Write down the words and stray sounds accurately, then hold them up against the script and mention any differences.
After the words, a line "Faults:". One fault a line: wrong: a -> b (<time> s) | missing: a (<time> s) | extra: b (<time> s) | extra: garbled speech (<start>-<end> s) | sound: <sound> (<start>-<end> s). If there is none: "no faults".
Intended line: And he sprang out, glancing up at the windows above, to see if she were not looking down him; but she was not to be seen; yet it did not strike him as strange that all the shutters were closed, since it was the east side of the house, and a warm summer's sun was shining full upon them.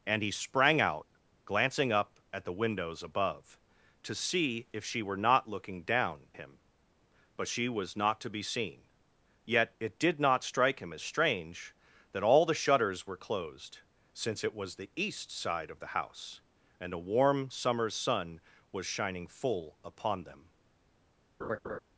And he sprang out, glancing up at the windows above, to see if she were not looking down him; but she was not to be seen; yet it did not strike him as strange that all the shutters were closed, since it was the east side of the house, and a warm summer's sun was shining full upon them.
Faults:
sound: laugh (21.4-21.8 s)